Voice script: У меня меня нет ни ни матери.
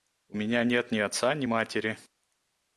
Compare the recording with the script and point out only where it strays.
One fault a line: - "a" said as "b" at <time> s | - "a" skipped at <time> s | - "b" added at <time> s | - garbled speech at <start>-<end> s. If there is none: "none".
- "меня" skipped at 0.6 s
- "отца" added at 1.0 s